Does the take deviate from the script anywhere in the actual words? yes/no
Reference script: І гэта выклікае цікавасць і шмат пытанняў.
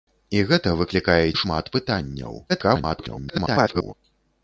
yes